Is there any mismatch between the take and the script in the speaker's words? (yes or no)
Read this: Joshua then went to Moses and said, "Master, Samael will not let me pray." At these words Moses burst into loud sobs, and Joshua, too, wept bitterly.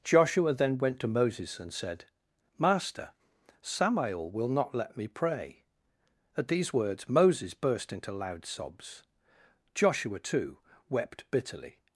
yes